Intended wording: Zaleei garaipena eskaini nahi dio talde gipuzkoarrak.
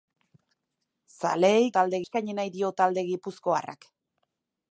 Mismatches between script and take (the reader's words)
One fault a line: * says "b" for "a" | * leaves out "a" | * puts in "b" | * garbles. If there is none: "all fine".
* says "talde" for "garaipena"